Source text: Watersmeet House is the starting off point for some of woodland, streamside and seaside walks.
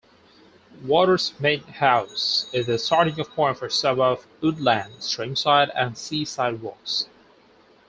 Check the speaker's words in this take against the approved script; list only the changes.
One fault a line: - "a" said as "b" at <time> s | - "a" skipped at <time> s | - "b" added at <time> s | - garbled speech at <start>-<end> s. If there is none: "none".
none